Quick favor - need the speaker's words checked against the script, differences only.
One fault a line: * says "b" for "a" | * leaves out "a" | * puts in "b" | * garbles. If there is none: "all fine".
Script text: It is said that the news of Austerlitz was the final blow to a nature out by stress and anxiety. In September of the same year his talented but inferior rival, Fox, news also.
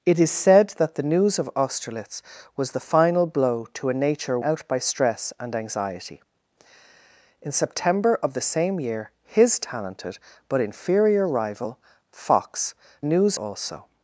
all fine